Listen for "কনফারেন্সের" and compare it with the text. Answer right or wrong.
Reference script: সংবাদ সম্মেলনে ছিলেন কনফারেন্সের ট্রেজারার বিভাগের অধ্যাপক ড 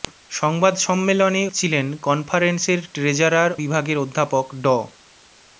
right